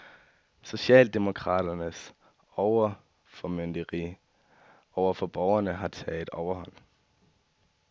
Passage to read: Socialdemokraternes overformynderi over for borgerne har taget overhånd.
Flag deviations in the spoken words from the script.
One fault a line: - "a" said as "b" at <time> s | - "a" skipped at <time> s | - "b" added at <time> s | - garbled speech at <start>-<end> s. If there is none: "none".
none